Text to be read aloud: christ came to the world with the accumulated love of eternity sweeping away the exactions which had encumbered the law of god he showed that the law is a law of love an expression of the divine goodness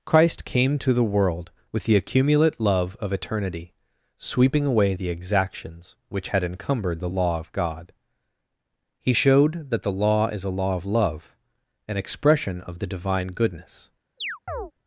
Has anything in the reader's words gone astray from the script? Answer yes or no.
yes